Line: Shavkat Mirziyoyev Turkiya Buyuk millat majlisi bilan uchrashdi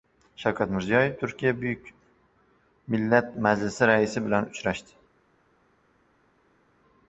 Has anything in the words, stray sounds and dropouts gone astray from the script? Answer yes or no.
yes